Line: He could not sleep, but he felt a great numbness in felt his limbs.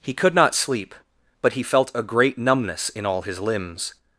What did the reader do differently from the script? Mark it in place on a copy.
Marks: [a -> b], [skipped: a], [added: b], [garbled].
He could not sleep, but he felt a great numbness in [felt -> all] his limbs.